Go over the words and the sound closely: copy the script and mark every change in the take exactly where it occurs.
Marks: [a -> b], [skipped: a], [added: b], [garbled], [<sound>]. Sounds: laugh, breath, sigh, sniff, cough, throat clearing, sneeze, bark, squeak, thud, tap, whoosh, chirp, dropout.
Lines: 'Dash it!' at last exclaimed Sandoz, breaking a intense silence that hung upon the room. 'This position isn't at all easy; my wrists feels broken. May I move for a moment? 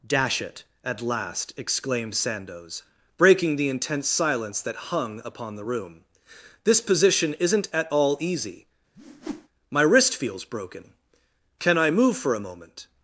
'Dash it!' at last exclaimed Sandoz, breaking [a -> the] intense silence that hung upon the room. 'This position isn't at all easy; [whoosh] my [wrists -> wrist] feels broken. [May -> Can] I move for a moment?